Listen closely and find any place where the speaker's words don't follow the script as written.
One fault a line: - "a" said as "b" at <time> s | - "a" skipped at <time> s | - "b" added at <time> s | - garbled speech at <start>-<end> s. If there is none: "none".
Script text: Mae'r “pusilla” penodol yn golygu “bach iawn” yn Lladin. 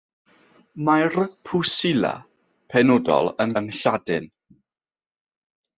- "golygu bach iawn" skipped at 3.5 s